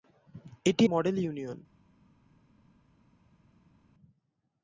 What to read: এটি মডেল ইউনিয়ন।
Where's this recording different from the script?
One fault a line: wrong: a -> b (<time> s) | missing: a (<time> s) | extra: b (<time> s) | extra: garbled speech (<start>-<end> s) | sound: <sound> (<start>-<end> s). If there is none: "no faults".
no faults